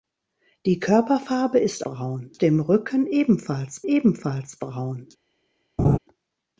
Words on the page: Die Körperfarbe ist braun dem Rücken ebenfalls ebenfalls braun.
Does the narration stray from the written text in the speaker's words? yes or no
no